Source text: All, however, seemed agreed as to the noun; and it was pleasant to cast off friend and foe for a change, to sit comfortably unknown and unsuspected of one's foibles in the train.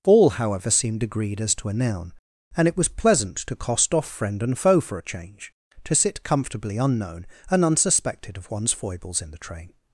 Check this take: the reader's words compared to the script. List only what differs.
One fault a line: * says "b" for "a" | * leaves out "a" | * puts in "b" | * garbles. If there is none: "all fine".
* says "a" for "the"
* says "cost" for "cast"